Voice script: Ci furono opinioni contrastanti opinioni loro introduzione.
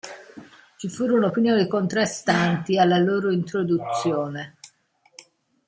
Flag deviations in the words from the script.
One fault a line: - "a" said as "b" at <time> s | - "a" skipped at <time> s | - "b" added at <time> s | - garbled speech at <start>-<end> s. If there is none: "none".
- "opinioni" said as "alla" at 2.8 s